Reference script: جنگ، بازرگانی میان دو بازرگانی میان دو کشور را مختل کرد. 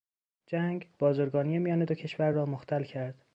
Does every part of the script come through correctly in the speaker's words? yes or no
no